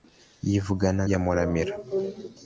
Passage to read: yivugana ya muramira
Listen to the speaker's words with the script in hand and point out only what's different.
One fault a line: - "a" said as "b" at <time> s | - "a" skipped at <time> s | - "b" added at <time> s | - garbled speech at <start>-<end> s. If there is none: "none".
none